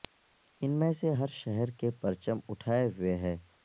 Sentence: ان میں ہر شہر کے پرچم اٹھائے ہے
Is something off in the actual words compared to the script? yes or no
yes